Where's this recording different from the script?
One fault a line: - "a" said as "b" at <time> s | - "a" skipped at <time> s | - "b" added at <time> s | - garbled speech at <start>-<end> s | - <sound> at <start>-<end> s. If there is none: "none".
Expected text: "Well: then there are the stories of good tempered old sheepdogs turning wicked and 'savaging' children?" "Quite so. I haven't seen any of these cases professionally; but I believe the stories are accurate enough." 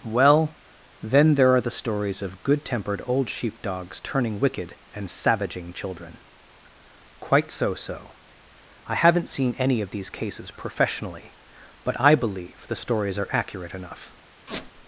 - "so" added at 7.8 s
- squeak at 14.5-14.7 s